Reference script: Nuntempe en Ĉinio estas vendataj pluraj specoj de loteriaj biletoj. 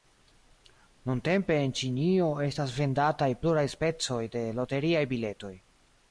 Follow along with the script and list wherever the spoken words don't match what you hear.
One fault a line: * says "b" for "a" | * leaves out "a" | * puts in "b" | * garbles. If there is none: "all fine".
all fine